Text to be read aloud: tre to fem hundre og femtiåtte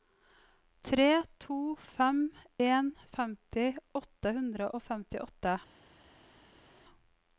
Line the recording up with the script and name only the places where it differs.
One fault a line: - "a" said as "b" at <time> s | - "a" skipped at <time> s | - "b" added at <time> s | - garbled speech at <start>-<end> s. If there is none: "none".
- "en femti åtte" added at 2.7 s